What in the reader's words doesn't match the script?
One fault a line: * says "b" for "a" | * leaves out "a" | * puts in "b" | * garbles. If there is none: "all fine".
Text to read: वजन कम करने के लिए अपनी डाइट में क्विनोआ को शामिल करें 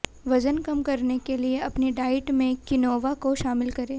all fine